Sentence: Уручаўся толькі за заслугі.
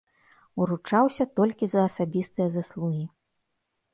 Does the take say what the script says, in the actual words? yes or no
no